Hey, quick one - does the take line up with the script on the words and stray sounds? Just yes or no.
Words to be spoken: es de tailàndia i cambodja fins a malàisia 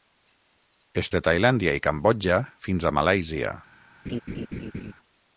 no